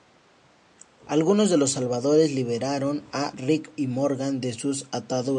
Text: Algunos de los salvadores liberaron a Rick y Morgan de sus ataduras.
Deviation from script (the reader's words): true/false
false